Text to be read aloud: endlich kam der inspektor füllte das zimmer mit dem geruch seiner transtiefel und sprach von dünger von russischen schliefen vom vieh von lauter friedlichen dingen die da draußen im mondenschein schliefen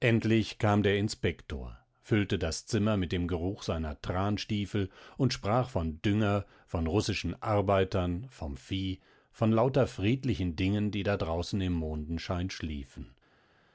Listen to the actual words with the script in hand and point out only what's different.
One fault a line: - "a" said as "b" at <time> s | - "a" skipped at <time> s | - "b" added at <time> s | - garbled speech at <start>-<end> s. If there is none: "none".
- "schliefen" said as "arbeitern" at 7.4 s